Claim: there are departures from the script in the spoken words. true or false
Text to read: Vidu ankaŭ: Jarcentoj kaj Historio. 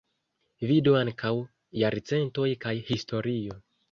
false